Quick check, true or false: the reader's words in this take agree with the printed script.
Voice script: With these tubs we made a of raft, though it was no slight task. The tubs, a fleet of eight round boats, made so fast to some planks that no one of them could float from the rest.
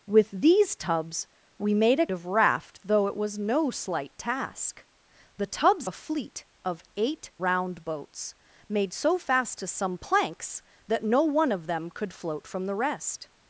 true